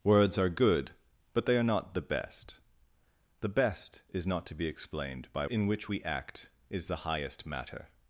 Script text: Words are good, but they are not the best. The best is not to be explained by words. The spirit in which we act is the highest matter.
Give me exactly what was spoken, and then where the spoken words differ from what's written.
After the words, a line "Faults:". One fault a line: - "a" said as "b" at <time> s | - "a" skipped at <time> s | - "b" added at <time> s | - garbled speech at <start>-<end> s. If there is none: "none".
Words are good, but they are not the best. The best is not to be explained by in which we act is the highest matter.
Faults:
- "words The spirit" skipped at 5.5 s